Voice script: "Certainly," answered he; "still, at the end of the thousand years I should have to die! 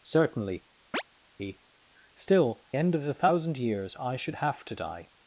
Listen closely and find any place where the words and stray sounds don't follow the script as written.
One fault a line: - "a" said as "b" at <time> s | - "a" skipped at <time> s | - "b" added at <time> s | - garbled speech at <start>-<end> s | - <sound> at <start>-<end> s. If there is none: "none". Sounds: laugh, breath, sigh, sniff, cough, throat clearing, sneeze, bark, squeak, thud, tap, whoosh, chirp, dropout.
- "answered" skipped at 0.7 s
- chirp at 0.9-1.0 s
- "at the" skipped at 2.6 s